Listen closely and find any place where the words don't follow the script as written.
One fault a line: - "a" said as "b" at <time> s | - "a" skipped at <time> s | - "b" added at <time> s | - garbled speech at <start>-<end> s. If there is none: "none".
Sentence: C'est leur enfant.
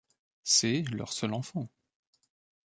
- "seul" added at 1.1 s